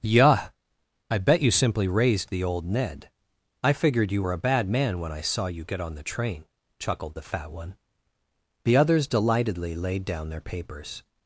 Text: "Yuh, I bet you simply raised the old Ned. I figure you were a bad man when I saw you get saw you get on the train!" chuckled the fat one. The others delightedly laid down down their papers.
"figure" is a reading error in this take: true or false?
true